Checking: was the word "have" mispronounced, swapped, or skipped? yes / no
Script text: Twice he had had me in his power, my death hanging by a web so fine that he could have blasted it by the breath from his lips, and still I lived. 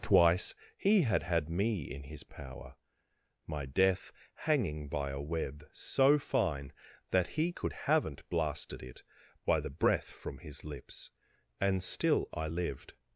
yes